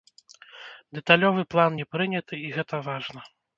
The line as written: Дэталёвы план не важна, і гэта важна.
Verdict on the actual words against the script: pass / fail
fail